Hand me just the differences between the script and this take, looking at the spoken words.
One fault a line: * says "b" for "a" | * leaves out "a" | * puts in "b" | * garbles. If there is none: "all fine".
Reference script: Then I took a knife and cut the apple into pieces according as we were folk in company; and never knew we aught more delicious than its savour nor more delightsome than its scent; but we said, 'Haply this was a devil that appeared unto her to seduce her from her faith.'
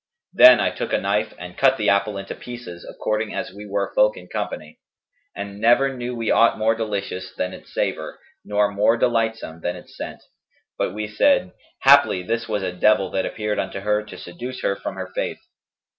all fine